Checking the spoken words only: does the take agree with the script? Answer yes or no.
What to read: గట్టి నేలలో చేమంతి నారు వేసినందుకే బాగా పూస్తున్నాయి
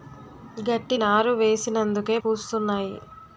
no